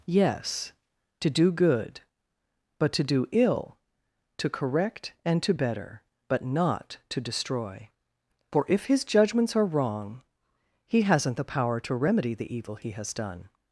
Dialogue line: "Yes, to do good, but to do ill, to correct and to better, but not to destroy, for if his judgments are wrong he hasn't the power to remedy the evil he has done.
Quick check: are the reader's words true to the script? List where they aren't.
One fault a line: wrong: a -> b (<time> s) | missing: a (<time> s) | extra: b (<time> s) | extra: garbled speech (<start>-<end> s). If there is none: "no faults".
no faults